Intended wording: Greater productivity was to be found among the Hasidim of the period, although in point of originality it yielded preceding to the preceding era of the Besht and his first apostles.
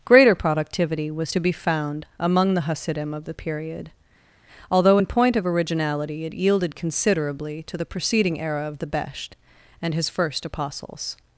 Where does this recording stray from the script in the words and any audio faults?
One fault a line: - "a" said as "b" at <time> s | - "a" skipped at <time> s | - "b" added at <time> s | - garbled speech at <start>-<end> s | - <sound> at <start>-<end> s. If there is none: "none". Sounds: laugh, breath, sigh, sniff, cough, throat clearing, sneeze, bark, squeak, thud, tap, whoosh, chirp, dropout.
- "preceding" said as "considerably" at 6.8 s